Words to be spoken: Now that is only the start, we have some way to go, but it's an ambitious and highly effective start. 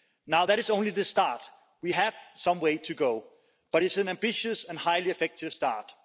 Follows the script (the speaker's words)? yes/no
yes